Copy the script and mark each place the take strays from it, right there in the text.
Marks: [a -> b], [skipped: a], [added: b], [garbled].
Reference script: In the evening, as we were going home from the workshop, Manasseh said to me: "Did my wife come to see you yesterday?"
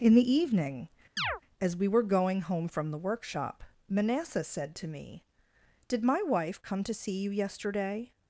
In the evening, as we were going home from the workshop, Manasseh said to me: "Did my wife come to see you yesterday?"